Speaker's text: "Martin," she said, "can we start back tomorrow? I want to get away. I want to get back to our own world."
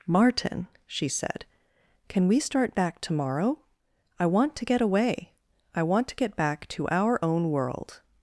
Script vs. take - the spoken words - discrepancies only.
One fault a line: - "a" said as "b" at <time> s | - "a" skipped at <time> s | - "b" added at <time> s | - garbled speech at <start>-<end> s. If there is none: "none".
none